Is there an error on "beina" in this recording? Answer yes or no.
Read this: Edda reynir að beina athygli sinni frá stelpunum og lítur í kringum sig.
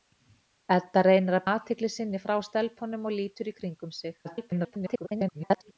yes